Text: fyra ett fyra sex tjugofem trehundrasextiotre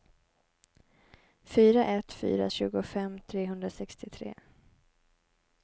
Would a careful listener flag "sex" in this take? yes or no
yes